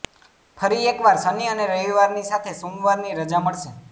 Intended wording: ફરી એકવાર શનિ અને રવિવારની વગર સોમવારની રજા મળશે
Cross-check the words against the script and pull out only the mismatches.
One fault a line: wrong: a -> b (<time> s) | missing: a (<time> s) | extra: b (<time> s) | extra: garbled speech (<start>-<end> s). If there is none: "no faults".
wrong: વગર -> સાથે (2.3 s)